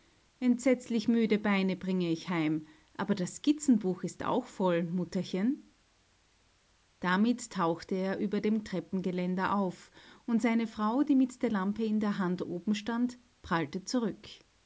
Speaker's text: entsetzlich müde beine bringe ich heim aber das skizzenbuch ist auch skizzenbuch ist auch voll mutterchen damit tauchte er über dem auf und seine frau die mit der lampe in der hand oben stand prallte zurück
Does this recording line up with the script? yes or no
no